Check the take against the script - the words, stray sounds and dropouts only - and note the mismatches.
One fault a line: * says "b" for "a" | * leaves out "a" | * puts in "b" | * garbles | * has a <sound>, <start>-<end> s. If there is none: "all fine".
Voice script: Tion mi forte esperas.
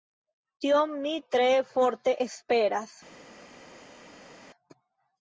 * puts in "tre"